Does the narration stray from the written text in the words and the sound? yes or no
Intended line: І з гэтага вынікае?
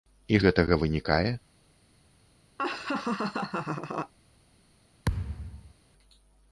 yes